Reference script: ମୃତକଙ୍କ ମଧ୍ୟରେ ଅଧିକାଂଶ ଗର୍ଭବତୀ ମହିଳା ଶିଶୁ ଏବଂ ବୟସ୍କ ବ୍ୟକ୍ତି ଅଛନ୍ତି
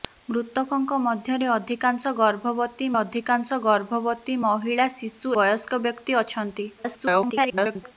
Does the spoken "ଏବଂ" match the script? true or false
false